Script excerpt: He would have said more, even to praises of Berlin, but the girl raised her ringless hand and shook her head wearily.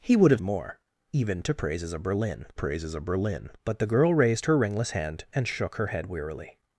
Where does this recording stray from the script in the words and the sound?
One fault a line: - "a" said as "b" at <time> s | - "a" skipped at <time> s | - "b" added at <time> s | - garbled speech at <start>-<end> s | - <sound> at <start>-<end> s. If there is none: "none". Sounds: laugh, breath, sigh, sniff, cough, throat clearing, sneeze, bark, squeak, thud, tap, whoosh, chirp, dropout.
- "said" skipped at 0.4 s
- "praises of Berlin" added at 2.5 s